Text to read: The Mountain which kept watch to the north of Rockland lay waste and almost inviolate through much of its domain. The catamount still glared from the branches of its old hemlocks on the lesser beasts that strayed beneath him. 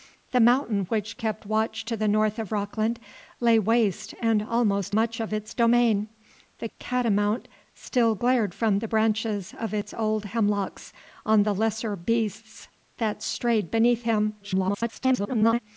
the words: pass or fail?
fail